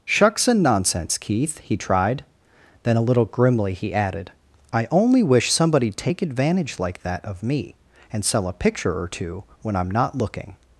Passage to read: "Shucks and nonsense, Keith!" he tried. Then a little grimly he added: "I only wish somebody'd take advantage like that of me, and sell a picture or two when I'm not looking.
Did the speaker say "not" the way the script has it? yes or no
yes